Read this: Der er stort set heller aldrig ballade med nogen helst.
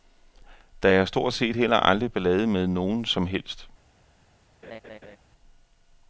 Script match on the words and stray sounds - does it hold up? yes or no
no